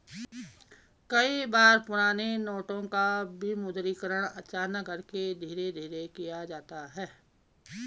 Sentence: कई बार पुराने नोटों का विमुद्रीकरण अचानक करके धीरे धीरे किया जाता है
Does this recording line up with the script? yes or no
yes